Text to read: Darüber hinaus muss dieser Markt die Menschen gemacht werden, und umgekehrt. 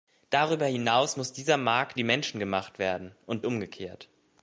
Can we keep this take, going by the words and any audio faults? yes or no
yes